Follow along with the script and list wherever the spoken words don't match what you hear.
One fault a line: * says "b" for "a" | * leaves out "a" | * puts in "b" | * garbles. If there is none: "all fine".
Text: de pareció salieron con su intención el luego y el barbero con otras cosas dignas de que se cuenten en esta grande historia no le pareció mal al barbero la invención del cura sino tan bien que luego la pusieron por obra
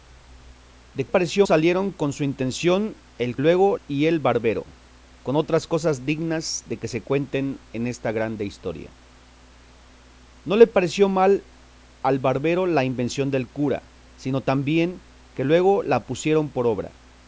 all fine